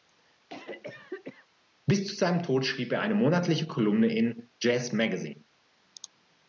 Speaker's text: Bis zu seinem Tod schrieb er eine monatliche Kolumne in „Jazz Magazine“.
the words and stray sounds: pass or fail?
fail